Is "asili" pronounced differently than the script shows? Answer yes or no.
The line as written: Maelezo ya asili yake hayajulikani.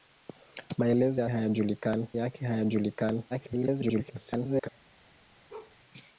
yes